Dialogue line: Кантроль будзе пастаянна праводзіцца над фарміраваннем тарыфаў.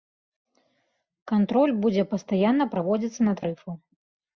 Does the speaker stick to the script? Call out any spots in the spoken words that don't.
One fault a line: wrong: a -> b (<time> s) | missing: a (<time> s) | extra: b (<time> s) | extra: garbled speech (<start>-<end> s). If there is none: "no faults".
missing: фарміраваннем (3.4 s)